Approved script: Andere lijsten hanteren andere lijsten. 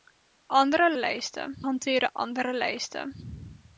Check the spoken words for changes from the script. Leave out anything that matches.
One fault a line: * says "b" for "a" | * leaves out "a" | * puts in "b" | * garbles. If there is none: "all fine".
all fine